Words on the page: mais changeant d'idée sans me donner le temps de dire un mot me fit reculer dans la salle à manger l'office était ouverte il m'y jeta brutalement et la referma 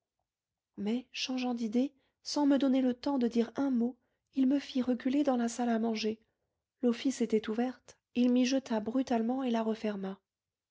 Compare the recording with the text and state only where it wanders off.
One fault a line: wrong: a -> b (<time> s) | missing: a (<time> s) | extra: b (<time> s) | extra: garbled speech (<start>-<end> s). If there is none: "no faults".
extra: il (4.3 s)